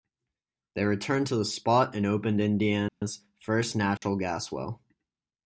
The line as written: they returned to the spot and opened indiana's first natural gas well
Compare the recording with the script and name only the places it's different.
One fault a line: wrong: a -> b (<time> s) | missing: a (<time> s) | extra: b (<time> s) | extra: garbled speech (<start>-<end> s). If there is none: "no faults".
no faults